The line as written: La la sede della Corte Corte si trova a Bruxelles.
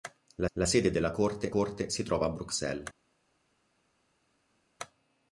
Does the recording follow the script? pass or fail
pass